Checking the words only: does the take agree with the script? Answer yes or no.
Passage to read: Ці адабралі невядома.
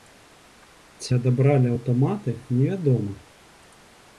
no